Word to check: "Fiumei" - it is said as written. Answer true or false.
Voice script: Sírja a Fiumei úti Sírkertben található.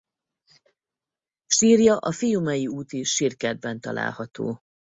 true